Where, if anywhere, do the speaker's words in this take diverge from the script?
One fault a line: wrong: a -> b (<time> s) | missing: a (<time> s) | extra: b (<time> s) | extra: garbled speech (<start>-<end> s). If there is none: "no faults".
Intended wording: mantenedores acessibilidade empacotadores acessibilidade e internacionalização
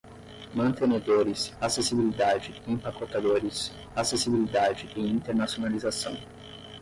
no faults